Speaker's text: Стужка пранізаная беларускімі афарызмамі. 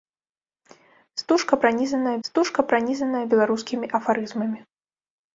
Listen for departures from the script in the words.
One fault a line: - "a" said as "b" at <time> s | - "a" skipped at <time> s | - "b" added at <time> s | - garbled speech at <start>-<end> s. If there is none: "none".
- "стужка пранізаная" added at 2.3 s